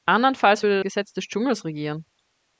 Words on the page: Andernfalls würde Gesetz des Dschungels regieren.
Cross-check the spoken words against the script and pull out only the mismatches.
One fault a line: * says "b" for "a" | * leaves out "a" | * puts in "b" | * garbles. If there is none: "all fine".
all fine